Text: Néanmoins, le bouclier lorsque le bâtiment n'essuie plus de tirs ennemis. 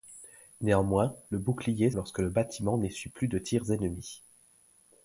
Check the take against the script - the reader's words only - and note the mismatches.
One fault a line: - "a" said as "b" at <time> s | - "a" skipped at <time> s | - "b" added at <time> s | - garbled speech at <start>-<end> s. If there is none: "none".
none